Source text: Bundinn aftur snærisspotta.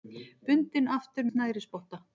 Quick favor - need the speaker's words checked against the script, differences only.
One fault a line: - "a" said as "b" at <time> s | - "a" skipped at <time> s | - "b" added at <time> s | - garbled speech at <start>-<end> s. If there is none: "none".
none